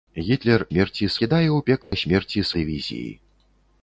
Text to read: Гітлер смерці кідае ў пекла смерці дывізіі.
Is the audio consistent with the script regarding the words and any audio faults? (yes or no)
no